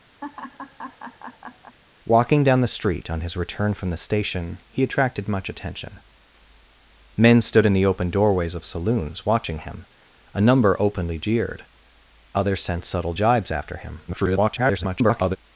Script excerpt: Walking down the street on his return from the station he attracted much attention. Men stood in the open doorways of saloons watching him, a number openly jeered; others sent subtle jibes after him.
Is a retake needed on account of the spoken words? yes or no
yes